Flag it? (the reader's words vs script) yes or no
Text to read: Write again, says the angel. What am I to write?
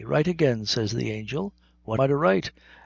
yes